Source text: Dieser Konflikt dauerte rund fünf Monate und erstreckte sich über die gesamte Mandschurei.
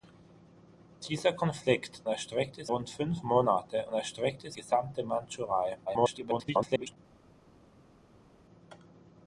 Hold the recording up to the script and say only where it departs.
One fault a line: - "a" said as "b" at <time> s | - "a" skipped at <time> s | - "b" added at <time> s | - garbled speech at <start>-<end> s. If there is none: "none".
- "dauerte" said as "erstreckte" at 2.1 s
- "sich über die" skipped at 4.5 s
- garbled speech at 5.9-7.0 s